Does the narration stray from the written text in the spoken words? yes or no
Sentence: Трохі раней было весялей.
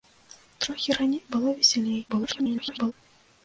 yes